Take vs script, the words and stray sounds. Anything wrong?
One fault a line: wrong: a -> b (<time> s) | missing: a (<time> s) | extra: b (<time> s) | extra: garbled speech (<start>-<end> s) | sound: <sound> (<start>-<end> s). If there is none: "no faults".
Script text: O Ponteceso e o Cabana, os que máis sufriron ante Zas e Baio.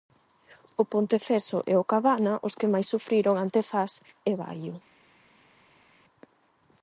no faults